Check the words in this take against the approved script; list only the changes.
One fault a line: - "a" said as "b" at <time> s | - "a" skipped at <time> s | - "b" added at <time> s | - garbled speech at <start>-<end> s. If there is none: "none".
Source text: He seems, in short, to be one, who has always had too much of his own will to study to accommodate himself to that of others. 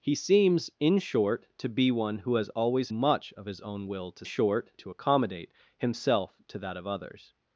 - "had too" skipped at 2.9 s
- "study" said as "short" at 4.2 s